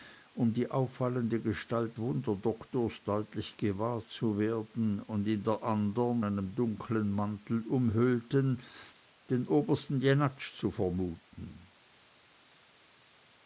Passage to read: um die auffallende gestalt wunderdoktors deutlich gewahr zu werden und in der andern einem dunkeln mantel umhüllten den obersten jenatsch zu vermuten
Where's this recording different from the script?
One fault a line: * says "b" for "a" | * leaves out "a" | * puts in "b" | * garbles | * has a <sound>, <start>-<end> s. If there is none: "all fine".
all fine